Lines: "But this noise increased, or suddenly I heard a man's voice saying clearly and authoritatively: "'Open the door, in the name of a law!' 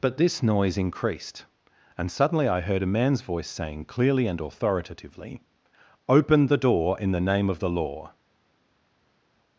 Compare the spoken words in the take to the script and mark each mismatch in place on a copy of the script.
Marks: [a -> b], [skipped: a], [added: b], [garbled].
"But this noise increased, [or -> and] suddenly I heard a man's voice saying clearly and authoritatively: "'Open the door, in the name of [a -> the] law!'